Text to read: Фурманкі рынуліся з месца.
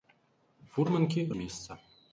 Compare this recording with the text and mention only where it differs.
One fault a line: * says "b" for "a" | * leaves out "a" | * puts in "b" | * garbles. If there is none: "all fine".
* leaves out "рынуліся"